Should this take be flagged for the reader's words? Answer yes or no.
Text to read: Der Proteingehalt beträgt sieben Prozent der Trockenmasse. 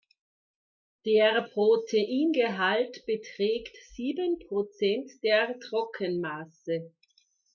no